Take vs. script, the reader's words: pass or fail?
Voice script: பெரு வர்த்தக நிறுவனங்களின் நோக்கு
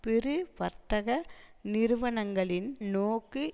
pass